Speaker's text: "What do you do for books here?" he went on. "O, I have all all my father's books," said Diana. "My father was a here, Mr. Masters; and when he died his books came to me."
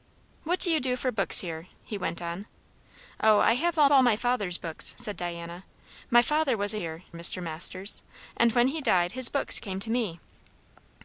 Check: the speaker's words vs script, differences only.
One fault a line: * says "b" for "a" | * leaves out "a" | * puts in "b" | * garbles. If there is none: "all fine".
all fine